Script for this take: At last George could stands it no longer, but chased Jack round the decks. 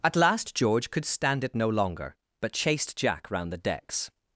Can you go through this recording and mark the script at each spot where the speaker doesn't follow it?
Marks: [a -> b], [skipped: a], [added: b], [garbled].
At last George could [stands -> stand] it no longer, but chased Jack round the decks.